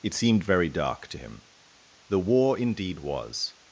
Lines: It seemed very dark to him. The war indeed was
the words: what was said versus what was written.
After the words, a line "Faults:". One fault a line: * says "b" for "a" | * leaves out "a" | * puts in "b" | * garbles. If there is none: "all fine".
It seemed very dark to him. The war indeed was
Faults:
all fine